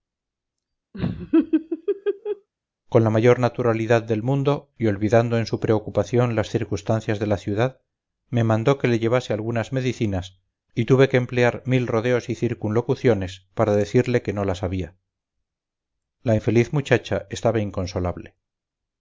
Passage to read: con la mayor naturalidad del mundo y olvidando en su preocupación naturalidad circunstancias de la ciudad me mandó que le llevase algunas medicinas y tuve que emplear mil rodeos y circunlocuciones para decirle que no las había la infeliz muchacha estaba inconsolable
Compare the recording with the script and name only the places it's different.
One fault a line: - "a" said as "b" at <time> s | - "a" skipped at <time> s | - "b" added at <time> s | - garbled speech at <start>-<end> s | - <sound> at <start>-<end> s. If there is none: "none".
- laugh at 0.9-2.5 s
- "naturalidad" said as "las" at 6.4 s